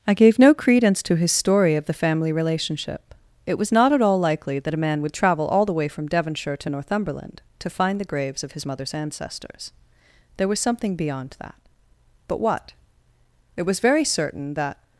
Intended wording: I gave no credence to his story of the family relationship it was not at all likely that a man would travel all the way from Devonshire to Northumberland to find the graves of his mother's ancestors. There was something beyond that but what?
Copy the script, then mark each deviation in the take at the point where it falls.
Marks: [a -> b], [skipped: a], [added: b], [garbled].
I gave no credence to his story of the family relationship it was not at all likely that a man would travel all the way from Devonshire to Northumberland to find the graves of his mother's ancestors. There was something beyond that but what? [added: It was very certain that]